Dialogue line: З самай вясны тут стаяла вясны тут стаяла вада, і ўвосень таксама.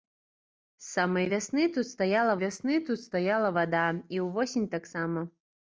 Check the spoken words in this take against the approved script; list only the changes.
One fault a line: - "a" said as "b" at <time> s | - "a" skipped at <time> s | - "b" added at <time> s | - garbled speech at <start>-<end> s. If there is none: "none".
none